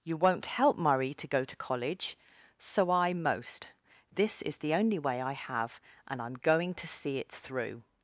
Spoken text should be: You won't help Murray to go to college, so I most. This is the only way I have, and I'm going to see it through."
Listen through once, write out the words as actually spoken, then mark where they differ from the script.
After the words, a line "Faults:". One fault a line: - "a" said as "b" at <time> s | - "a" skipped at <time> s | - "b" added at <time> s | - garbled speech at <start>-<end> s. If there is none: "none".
You won't help Murray to go to college, so I most. This is the only way I have, and I'm going to see it through."
Faults:
none